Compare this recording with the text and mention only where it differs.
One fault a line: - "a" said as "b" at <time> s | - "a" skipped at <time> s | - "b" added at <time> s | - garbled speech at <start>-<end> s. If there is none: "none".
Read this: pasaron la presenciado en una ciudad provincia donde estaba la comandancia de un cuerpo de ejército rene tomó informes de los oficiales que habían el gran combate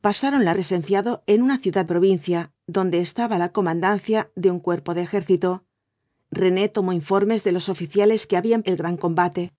none